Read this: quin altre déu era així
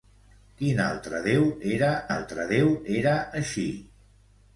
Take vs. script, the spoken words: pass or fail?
fail